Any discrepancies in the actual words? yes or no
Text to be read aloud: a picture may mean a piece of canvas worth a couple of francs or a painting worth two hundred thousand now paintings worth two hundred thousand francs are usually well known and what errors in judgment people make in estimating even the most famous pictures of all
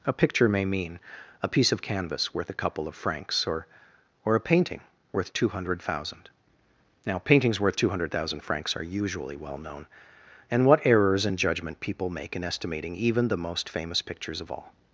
yes